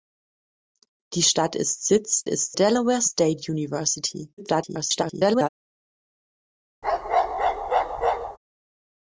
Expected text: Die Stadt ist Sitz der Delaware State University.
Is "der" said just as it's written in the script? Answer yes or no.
no